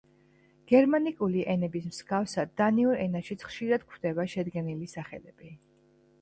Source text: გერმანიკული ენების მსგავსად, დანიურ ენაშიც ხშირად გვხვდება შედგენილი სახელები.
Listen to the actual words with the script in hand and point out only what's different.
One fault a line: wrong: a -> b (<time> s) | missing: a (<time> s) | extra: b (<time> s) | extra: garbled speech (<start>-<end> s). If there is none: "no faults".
no faults